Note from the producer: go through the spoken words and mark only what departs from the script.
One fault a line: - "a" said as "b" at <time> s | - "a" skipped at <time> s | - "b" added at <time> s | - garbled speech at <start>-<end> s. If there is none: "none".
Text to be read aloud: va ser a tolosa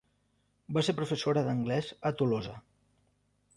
- "professora d'anglès" added at 1.0 s